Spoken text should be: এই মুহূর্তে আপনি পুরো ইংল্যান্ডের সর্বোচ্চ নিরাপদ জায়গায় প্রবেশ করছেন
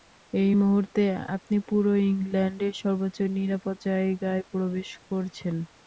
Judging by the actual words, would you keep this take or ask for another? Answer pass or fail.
pass